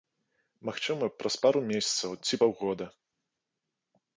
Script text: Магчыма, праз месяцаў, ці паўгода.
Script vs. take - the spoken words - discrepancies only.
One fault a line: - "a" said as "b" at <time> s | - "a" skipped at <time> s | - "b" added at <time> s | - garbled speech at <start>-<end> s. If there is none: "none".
- "пару" added at 1.4 s